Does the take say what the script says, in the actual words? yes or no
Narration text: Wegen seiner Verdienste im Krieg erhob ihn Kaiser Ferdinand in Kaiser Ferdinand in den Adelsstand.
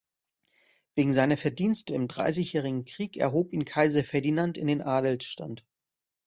no